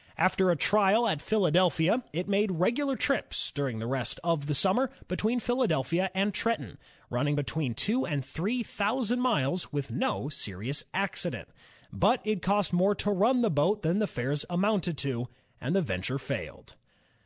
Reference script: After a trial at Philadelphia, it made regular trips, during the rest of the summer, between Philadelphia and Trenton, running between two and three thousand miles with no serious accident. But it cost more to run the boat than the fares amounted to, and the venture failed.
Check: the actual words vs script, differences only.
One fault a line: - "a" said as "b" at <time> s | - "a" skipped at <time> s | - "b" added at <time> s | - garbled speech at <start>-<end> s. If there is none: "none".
none